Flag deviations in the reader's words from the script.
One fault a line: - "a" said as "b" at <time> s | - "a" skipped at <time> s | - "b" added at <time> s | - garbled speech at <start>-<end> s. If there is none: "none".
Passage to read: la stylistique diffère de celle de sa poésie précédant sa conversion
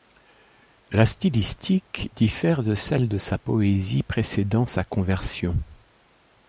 none